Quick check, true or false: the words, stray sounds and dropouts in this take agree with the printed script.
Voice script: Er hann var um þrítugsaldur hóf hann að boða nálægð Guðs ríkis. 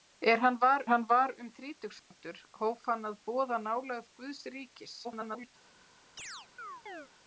false